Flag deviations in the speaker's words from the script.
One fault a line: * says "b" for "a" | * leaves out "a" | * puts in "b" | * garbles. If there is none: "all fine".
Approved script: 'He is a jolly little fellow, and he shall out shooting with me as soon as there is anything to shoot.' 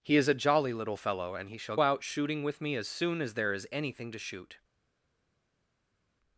all fine